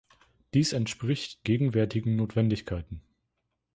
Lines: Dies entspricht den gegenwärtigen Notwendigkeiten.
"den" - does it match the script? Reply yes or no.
no